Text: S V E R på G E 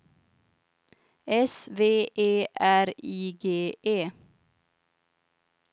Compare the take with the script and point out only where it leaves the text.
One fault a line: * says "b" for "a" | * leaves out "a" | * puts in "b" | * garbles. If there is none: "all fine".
* says "I" for "på"